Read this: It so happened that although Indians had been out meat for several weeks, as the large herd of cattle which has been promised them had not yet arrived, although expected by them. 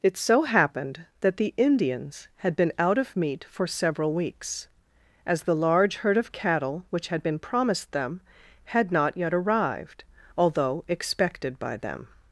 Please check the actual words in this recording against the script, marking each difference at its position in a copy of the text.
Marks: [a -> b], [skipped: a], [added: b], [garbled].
It so happened that [although -> the] Indians had been out [added: of] meat for several weeks, as the large herd of cattle which [has -> had] been promised them had not yet arrived, although expected by them.